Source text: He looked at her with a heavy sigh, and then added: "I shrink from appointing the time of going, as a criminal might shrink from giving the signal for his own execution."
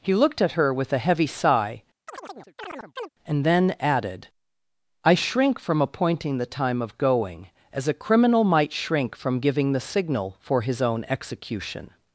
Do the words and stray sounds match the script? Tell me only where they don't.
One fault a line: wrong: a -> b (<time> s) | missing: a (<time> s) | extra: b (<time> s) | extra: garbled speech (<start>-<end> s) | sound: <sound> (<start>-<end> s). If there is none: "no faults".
sound: chirp (2.1-3.1 s)